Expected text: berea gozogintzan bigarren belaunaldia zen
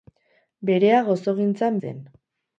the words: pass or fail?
fail